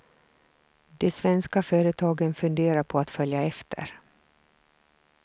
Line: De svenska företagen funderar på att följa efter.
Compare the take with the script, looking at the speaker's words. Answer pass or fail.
pass